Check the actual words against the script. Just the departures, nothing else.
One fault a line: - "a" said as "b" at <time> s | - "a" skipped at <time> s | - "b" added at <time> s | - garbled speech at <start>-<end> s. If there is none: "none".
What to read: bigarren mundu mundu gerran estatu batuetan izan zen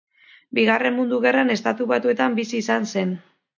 - "mundu" skipped at 1.2 s
- "bizi" added at 2.4 s